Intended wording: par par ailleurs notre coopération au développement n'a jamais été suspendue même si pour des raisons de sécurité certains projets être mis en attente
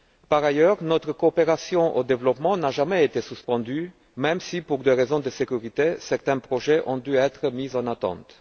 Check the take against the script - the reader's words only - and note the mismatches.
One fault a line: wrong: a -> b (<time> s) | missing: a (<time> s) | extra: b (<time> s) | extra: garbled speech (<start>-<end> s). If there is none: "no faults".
missing: par (0.4 s)
extra: ont dû (6.9 s)